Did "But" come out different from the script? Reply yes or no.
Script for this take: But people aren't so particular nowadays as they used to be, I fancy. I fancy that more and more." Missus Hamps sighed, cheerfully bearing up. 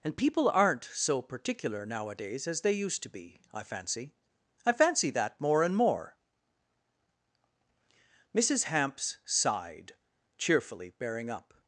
yes